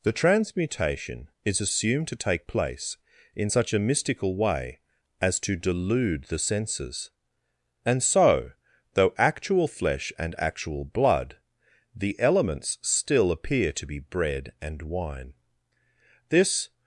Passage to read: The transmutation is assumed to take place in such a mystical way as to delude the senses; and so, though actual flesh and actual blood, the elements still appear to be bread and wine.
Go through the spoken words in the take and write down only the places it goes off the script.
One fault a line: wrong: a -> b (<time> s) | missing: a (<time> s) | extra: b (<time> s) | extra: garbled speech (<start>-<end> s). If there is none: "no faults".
extra: This (16.3 s)